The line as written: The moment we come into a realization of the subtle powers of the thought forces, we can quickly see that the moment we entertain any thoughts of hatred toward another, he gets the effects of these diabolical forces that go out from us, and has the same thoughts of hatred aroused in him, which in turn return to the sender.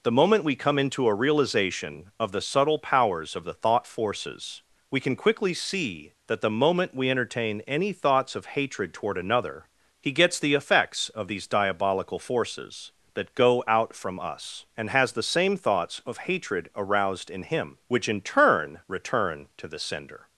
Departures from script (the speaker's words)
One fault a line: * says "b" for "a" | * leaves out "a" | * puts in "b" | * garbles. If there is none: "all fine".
all fine